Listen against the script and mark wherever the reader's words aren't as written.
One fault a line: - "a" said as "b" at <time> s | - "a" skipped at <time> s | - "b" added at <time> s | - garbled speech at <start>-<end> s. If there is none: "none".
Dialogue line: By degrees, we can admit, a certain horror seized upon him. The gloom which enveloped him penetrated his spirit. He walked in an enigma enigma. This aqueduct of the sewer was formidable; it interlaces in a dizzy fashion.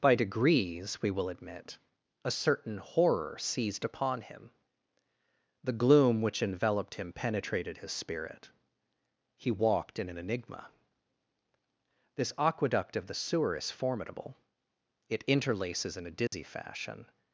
- "can" said as "will" at 1.1 s
- "enigma" skipped at 10.7 s
- "was" said as "is" at 13.6 s